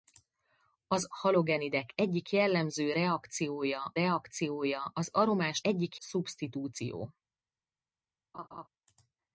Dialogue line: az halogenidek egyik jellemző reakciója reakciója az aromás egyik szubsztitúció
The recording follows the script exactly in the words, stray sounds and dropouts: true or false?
false